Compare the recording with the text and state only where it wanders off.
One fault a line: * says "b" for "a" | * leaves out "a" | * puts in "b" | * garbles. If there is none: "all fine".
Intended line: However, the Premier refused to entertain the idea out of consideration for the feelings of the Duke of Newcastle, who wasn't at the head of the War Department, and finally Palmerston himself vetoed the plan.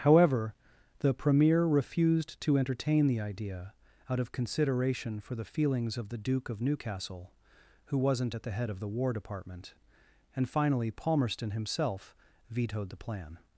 all fine